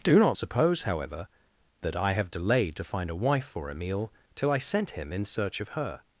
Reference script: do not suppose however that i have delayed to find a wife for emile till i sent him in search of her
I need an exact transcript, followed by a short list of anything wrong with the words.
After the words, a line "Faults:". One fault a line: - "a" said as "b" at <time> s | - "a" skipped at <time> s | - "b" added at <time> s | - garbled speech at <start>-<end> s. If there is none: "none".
do not suppose however that i have delayed to find a wife for emile till i sent him in search of her
Faults:
none